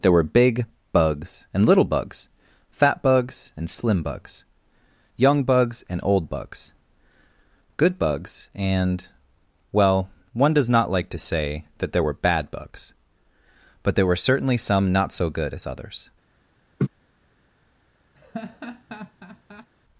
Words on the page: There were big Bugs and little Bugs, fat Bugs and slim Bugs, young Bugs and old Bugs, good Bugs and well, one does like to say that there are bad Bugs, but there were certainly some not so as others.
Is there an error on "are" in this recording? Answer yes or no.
yes